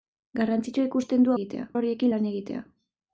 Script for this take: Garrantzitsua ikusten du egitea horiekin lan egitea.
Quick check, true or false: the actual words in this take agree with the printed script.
true